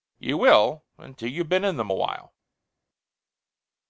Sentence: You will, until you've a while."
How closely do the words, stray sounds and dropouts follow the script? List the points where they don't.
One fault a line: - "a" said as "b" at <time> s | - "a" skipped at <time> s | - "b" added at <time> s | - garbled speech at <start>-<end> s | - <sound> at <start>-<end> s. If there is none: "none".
- "been in them" added at 1.5 s